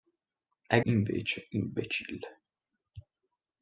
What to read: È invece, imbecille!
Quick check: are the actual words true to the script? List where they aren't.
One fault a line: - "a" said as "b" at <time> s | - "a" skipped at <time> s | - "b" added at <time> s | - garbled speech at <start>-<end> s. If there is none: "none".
none